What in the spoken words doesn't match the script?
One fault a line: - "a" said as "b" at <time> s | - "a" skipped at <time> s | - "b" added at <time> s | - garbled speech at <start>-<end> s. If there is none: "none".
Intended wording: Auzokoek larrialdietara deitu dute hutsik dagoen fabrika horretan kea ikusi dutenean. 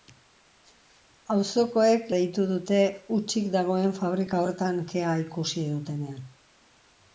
- "larrialdietara" skipped at 2.1 s